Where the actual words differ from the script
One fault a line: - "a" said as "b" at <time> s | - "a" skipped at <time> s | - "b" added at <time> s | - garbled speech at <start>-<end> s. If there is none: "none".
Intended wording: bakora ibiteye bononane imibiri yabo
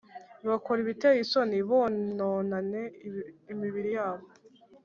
- "isoni" added at 1.2 s